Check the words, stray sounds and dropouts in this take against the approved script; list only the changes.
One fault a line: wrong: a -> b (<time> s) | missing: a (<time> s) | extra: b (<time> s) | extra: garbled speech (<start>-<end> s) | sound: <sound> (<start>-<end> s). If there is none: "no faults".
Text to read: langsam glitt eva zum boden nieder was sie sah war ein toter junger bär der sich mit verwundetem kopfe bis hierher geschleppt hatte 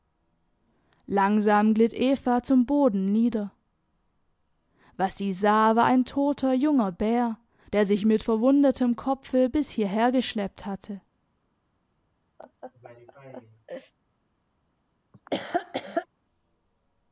sound: laugh (12.4-13.9 s)
sound: laugh (15.1-16.1 s)